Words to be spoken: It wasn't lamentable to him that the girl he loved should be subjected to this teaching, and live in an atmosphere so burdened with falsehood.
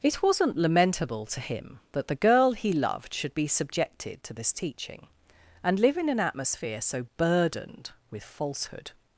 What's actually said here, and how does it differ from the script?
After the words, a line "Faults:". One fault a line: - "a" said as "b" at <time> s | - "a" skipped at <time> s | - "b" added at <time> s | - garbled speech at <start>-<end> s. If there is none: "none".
It wasn't lamentable to him that the girl he loved should be subjected to this teaching, and live in an atmosphere so burdened with falsehood.
Faults:
none